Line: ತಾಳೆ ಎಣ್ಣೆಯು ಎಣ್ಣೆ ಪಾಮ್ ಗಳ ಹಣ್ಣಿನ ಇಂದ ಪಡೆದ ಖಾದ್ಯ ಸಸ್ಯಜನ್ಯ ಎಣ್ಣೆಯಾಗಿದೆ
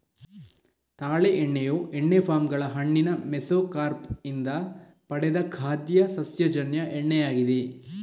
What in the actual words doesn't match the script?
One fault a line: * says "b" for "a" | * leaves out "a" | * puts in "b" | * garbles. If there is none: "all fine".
* puts in "ಮೆಸೊಕಾರ್ಪ್"